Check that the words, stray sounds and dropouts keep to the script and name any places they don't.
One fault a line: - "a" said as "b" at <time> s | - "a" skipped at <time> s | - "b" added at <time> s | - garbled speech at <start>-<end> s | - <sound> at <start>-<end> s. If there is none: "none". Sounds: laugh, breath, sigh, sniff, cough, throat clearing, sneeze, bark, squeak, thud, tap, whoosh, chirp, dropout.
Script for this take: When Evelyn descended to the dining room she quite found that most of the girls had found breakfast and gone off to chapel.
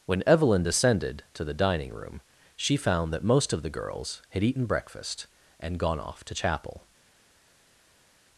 - "quite" skipped at 2.8 s
- "found" said as "eaten" at 4.4 s